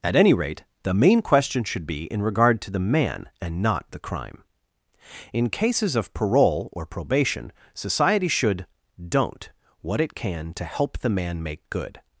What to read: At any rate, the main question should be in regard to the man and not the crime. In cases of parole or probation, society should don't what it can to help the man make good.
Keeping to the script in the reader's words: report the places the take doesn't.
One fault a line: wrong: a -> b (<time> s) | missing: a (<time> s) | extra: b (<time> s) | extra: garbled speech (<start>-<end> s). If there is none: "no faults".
no faults